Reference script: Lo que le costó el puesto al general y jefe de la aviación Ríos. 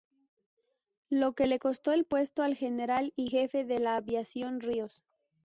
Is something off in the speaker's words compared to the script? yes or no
no